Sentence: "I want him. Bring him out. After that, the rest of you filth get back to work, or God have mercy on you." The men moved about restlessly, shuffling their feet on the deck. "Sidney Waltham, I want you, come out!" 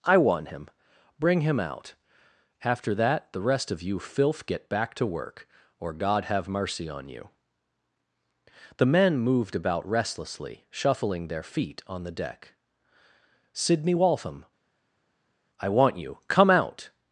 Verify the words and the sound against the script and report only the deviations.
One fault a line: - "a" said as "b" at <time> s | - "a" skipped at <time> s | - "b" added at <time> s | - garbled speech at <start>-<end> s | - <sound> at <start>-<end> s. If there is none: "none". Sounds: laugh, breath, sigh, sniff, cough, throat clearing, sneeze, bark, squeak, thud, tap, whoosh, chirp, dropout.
none